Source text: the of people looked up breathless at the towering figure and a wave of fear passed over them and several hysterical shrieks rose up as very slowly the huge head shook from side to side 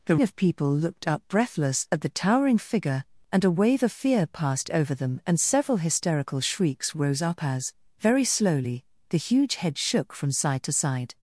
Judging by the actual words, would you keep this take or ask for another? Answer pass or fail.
pass